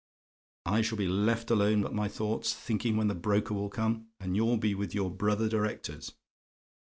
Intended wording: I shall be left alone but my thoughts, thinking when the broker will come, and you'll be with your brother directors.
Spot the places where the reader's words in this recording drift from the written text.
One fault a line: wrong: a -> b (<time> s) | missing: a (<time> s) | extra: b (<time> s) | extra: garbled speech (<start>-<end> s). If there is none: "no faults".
no faults